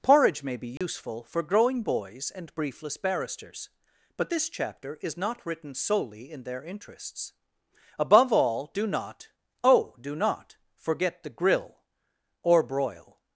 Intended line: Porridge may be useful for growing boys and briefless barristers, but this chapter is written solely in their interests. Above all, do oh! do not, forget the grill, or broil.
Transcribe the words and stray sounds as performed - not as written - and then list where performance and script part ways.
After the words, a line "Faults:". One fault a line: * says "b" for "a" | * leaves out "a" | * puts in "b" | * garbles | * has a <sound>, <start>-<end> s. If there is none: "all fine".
Porridge may be useful for growing boys and briefless barristers, but this chapter is not written solely in their interests. Above all, do not, oh! do not, forget the grill, or broil.
Faults:
* has a dropout, 0.8-0.8 s
* puts in "not"
* puts in "not"